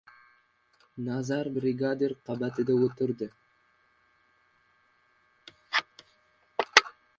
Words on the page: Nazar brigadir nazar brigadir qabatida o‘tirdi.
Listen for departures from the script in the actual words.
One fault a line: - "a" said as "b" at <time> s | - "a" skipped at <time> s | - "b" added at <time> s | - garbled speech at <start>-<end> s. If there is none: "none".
- "nazar brigadir" skipped at 2.1 s